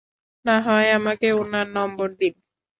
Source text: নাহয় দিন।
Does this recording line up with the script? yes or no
no